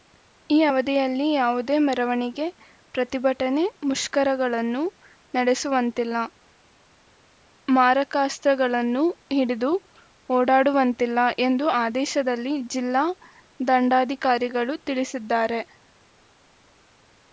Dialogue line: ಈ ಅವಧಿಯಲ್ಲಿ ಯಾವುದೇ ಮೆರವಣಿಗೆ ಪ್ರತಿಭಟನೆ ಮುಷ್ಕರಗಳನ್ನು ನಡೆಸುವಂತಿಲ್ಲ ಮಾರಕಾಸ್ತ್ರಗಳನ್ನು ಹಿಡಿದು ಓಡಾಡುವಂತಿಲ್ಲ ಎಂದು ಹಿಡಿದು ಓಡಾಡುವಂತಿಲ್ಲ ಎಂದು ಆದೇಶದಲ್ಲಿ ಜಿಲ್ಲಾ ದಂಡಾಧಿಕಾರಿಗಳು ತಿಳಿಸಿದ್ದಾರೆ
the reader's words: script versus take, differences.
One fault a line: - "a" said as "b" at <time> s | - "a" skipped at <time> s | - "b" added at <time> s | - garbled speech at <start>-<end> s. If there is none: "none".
- "ಹಿಡಿದು ಓಡಾಡುವಂತಿಲ್ಲ ಎಂದು" skipped at 11.7 s